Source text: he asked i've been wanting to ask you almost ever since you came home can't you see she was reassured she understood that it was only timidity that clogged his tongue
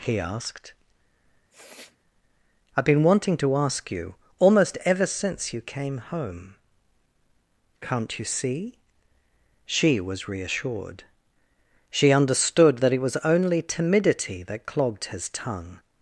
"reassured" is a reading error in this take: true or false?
false